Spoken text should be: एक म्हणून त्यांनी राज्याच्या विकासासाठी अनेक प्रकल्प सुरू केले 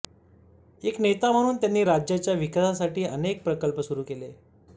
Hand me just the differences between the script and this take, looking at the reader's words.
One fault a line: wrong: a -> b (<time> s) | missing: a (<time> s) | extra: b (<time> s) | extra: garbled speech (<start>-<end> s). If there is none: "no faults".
extra: नेता (1.0 s)